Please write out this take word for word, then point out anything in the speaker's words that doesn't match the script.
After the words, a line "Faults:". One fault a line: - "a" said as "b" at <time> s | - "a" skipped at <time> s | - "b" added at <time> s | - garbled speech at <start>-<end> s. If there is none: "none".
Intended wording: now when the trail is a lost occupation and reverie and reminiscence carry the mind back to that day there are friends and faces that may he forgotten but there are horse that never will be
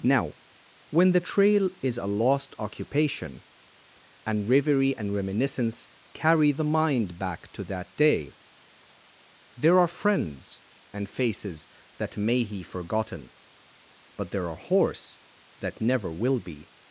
now when the trail is a lost occupation and reverie and reminiscence carry the mind back to that day there are friends and faces that may he forgotten but there are horse that never will be
Faults:
none